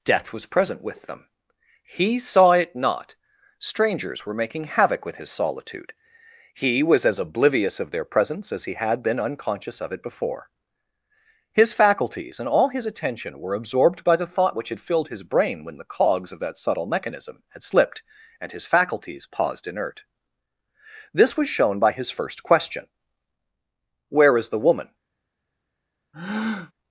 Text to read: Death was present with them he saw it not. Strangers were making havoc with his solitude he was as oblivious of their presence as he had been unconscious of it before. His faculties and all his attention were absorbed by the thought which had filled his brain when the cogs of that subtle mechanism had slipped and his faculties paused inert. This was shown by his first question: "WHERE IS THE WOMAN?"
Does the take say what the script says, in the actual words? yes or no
yes